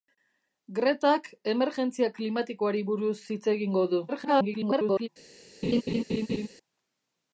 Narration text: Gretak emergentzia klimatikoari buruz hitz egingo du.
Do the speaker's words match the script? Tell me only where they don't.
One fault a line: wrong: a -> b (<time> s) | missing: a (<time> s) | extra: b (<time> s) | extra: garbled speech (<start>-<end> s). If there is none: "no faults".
extra: garbled speech (4.1-5.1 s)